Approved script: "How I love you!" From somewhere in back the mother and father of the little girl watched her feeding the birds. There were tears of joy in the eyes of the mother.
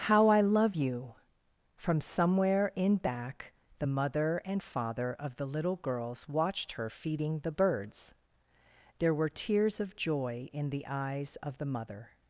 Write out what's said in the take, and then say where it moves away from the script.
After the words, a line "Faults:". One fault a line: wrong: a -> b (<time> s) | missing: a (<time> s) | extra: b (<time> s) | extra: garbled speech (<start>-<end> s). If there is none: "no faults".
"How I love you!" From somewhere in back the mother and father of the little girls watched her feeding the birds. There were tears of joy in the eyes of the mother.
Faults:
wrong: girl -> girls (5.8 s)